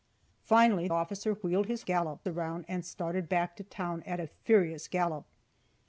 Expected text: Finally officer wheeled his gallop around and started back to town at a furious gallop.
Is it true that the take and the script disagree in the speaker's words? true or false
false